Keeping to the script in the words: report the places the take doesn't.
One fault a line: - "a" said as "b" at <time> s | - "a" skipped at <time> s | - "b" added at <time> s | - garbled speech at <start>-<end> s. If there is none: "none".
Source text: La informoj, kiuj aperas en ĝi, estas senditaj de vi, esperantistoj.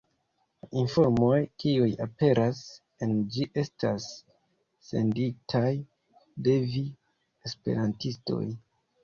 none